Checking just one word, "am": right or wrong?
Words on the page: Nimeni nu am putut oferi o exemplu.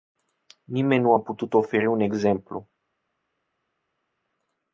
wrong